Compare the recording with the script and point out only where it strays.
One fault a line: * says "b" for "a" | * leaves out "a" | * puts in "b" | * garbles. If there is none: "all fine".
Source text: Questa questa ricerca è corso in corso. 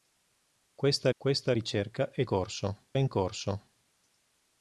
all fine